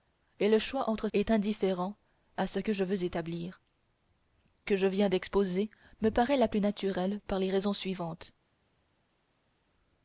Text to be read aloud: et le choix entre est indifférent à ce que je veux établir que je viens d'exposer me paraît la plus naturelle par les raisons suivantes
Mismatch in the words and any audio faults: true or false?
false